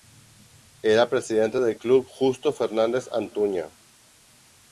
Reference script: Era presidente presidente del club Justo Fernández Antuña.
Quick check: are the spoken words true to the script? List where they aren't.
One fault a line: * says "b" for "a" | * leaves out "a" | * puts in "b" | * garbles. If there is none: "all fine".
* leaves out "presidente"